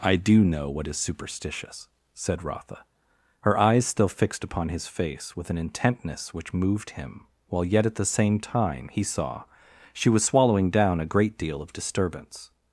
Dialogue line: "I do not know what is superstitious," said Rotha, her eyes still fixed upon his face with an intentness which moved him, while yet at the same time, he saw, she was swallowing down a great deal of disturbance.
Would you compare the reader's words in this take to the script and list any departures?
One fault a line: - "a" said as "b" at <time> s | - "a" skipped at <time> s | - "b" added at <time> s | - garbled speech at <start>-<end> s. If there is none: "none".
- "not" skipped at 0.4 s